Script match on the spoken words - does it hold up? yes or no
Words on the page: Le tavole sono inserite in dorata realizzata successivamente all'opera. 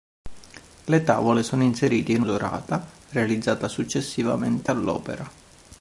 yes